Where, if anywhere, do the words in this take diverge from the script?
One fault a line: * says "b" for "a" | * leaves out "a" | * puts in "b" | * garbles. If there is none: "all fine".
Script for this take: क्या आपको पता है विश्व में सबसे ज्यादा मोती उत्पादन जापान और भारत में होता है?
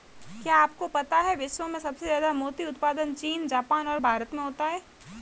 * puts in "चीन"